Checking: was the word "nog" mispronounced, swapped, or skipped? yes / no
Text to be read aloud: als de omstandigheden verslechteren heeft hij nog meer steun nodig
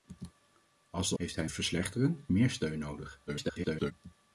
yes